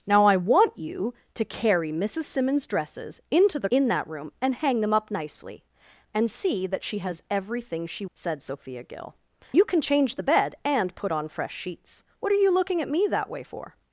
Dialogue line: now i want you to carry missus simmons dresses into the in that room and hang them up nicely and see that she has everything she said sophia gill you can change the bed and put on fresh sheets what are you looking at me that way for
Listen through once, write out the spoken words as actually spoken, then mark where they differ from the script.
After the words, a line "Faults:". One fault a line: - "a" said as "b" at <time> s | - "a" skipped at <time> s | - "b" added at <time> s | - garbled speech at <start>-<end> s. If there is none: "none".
now i want you to carry missus simmons dresses into the in that room and hang them up nicely and see that she has everything she said sophia gill you can change the bed and put on fresh sheets what are you looking at me that way for
Faults:
none